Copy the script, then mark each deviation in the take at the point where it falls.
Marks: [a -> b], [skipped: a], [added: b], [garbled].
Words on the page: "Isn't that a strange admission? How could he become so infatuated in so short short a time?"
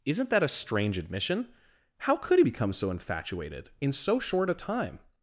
"Isn't that a strange admission? How could he become so infatuated in so short [skipped: short] a time?"